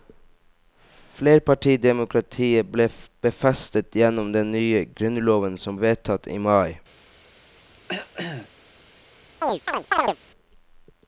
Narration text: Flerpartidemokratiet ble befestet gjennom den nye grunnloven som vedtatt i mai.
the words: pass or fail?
pass